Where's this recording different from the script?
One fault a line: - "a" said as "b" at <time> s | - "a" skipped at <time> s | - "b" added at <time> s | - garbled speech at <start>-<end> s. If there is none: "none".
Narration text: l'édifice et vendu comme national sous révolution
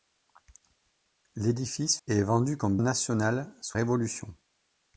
none